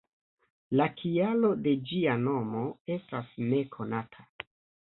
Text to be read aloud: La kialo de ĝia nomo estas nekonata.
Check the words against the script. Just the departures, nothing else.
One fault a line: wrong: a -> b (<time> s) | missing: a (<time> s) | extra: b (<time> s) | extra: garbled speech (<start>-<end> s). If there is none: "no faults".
no faults